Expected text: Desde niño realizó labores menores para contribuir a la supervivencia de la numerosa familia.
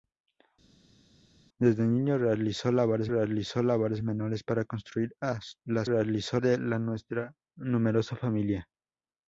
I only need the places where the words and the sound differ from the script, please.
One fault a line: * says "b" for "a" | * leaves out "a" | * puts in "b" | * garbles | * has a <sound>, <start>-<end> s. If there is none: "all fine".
* puts in "realizó labores"
* says "realizó" for "supervivencia"